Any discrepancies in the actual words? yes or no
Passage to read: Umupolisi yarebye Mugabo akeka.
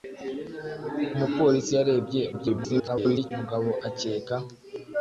yes